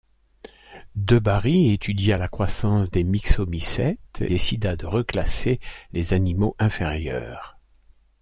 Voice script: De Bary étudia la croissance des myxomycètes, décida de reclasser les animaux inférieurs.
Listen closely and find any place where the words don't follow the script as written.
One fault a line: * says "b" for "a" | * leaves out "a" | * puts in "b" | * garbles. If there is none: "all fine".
all fine